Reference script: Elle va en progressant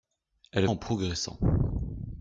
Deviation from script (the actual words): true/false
true